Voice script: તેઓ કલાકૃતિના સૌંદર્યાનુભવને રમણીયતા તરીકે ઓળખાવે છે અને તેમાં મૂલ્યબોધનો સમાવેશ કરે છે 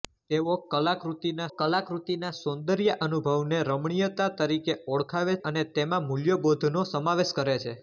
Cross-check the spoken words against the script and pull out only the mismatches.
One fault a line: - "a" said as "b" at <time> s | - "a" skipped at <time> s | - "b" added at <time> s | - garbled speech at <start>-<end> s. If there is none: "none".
- "કલાકૃતિના" added at 1.6 s
- "છે" skipped at 5.4 s